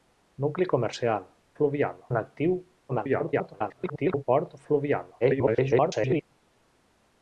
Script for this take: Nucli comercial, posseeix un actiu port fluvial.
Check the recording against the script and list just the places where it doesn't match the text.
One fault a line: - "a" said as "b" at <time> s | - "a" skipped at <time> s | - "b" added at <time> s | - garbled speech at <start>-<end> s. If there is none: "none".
- "posseeix" said as "fluvial" at 1.6 s
- garbled speech at 2.9-4.2 s
- garbled speech at 5.2-6.2 s